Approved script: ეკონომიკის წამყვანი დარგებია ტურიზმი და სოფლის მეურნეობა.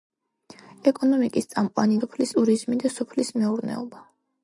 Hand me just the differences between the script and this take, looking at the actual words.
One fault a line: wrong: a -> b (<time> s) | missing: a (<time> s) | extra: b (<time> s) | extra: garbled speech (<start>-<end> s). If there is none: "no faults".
wrong: დარგებია -> სოფლის (2.0 s)